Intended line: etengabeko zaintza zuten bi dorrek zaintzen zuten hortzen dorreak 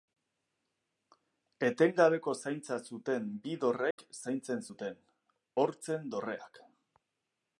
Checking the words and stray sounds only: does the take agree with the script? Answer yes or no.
no